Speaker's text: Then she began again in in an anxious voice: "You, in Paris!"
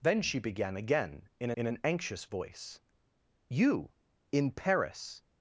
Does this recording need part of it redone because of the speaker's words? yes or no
no